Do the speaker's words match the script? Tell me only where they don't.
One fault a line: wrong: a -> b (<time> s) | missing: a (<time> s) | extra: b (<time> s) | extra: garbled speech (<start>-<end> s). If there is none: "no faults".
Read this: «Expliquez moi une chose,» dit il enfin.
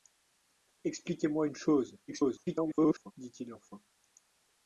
extra: garbled speech (2.1-3.1 s)